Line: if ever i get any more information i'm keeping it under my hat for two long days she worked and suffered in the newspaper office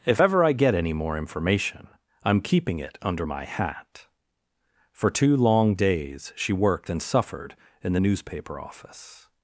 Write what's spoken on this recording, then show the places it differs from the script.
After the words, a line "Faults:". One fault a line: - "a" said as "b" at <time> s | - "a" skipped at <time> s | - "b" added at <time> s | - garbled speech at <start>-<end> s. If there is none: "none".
if ever i get any more information i'm keeping it under my hat for two long days she worked and suffered in the newspaper office
Faults:
none